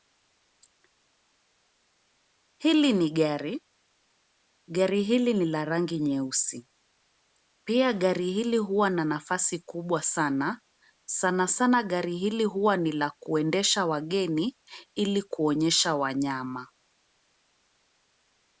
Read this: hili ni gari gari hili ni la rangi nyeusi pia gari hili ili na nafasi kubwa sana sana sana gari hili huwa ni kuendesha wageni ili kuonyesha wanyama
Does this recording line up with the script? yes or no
no